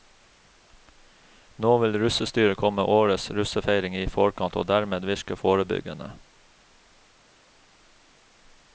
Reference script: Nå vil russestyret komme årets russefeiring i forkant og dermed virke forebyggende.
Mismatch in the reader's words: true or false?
false